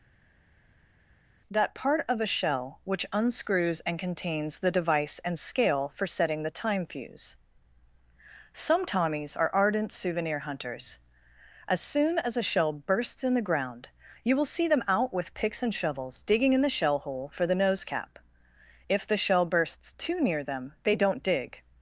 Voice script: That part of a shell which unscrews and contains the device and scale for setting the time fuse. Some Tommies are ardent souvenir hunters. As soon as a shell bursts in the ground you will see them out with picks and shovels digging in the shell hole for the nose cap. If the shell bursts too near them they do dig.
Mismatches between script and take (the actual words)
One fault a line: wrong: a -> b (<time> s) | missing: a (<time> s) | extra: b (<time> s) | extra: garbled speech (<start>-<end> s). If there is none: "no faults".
wrong: do -> don't (21.0 s)